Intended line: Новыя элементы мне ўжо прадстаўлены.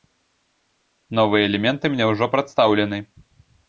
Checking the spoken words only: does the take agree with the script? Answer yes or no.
yes